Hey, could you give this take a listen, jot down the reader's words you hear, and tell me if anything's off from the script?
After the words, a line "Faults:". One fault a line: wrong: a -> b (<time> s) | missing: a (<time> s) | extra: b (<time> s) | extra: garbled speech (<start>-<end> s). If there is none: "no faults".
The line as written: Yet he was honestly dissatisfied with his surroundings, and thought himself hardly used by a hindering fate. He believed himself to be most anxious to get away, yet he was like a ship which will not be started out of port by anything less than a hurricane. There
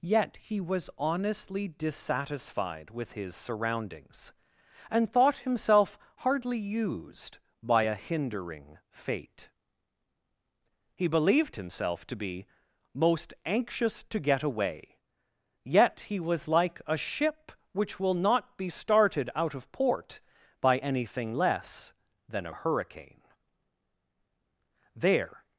Yet he was honestly dissatisfied with his surroundings, and thought himself hardly used by a hindering fate. He believed himself to be most anxious to get away, yet he was like a ship which will not be started out of port by anything less than a hurricane. There
Faults:
no faults